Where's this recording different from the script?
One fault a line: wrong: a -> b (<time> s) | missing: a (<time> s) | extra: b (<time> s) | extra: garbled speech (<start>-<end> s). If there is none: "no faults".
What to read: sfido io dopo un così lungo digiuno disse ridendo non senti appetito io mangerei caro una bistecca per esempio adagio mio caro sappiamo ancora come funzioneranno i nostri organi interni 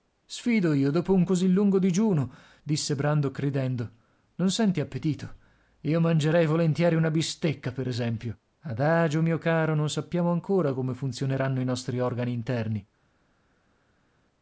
extra: brandok (2.9 s)
wrong: caro -> volentieri (6.5 s)
extra: non (9.7 s)